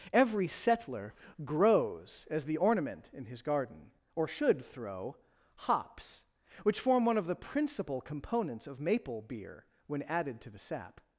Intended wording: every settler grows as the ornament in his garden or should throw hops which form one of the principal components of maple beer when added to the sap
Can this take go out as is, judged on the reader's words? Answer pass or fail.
pass